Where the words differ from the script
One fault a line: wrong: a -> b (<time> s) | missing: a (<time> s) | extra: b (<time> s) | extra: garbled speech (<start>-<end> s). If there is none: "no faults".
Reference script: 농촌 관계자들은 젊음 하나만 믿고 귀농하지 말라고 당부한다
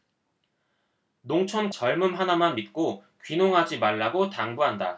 missing: 관계자들은 (1.7 s)